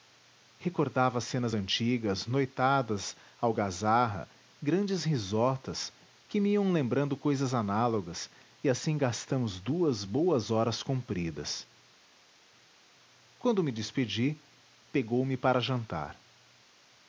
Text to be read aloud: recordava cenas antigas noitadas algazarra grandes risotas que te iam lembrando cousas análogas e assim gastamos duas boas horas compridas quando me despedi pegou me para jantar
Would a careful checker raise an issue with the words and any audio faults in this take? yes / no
yes